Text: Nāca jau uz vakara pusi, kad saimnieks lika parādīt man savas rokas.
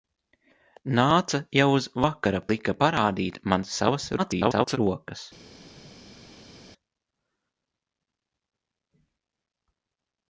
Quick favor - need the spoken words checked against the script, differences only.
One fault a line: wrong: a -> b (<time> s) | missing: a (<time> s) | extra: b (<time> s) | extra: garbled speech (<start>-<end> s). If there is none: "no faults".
missing: pusi kad saimnieks (2.4 s)
extra: garbled speech (4.2-4.8 s)